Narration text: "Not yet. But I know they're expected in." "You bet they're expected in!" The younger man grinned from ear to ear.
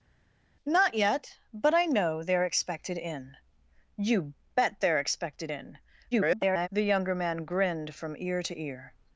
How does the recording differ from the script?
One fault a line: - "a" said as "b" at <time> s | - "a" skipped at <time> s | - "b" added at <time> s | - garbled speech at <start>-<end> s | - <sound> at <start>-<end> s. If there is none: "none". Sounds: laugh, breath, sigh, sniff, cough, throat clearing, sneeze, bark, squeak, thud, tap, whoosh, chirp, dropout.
- garbled speech at 6.1-6.7 s